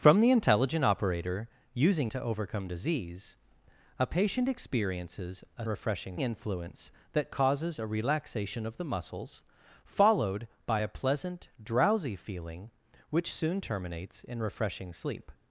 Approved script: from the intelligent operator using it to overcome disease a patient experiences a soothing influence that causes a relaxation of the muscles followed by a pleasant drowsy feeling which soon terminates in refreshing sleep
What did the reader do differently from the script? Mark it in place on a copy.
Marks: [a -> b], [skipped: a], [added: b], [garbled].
from the intelligent operator using [skipped: it] to overcome disease a patient experiences a [soothing -> refreshing] influence that causes a relaxation of the muscles followed by a pleasant drowsy feeling which soon terminates in refreshing sleep